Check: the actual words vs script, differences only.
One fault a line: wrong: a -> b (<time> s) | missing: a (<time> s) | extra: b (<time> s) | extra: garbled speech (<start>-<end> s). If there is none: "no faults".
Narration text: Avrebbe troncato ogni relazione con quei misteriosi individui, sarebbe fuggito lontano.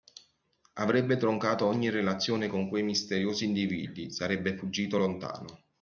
no faults